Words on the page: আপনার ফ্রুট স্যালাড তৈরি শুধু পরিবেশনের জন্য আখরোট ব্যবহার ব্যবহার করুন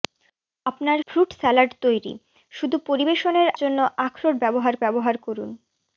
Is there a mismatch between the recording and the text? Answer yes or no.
no